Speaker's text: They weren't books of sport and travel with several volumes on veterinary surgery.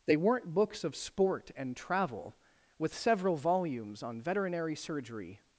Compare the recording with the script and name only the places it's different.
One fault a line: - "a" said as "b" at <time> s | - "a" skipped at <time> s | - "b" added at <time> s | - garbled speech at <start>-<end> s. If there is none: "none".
none